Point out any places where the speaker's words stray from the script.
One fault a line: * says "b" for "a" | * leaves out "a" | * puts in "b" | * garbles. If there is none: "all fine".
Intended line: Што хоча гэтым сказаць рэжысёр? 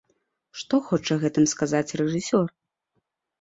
all fine